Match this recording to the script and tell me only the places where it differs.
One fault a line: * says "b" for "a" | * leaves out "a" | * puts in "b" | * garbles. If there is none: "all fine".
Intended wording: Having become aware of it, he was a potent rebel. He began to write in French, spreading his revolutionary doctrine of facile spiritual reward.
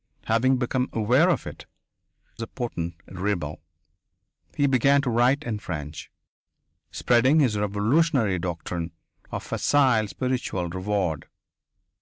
* leaves out "he was"